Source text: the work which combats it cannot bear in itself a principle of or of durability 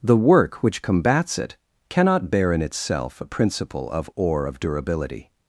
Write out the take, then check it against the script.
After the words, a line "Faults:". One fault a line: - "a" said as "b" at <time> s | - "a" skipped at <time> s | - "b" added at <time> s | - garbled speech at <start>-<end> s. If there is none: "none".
the work which combats it cannot bear in itself a principle of or of durability
Faults:
none